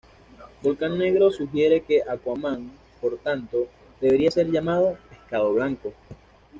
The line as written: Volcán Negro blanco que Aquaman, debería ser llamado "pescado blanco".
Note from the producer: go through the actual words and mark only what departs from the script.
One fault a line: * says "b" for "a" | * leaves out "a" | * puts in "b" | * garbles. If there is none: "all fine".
* says "sugiere" for "blanco"
* puts in "por tanto"